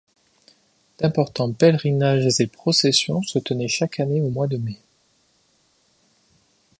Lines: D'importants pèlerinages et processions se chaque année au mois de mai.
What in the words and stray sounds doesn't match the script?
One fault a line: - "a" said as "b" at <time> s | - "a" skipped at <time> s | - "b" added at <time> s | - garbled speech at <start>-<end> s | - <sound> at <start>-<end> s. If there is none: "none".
- "tenaient" added at 3.4 s